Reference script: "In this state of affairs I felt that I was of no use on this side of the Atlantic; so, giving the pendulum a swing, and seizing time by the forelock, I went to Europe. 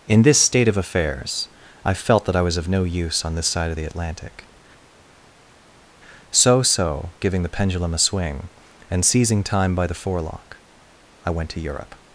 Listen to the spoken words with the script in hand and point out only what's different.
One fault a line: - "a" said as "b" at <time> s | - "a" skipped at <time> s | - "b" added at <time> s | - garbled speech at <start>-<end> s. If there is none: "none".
- "so" added at 6.6 s